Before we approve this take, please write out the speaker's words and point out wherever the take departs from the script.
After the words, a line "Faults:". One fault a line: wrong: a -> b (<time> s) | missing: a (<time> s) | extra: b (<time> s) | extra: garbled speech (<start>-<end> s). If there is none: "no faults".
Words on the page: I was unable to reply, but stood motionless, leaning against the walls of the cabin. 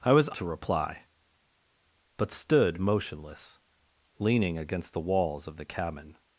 I was to reply, but stood motionless, leaning against the walls of the cabin.
Faults:
missing: unable (0.3 s)